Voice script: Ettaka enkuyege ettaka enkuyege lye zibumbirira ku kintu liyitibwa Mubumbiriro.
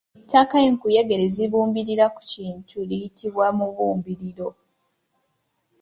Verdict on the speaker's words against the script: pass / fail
fail